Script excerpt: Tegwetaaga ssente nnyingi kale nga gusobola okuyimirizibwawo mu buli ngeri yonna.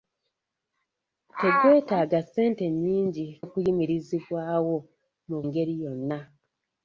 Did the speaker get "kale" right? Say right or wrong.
wrong